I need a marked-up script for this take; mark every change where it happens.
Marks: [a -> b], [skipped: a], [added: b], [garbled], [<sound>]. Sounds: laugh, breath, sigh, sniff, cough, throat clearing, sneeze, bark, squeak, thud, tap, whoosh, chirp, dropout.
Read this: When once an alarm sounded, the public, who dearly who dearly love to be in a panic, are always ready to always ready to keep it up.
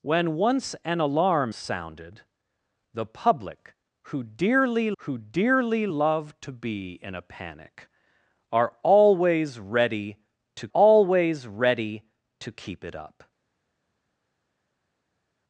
When once an alarm sounded, the public, who dearly who dearly love to be in a panic, are always ready to always ready to keep it up.